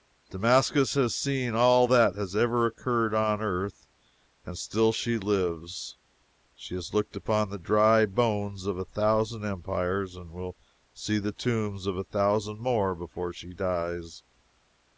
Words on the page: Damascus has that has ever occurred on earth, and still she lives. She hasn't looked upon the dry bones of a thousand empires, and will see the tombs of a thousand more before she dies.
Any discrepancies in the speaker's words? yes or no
yes